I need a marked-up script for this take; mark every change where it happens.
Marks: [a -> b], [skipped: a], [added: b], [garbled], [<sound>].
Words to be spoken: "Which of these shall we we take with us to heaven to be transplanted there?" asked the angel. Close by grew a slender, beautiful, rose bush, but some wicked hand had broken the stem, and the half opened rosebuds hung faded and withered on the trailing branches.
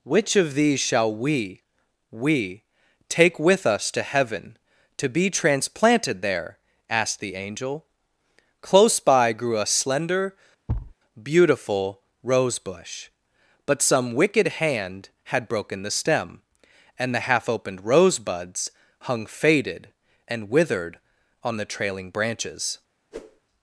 "Which of these shall we we take with us to heaven to be transplanted there?" asked the angel. Close by grew a slender, [thud] beautiful, rose bush, but some wicked hand had broken the stem, and the half opened rosebuds hung faded and withered on the trailing branches. [whoosh]